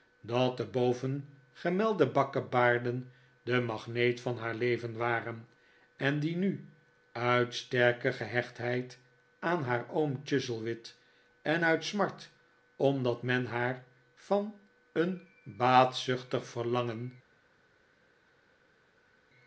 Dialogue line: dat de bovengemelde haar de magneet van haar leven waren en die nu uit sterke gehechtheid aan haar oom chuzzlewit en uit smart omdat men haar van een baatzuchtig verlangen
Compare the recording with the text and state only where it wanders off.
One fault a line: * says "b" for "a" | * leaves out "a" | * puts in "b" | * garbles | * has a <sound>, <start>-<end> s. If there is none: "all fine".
* says "bakkebaarden" for "haar"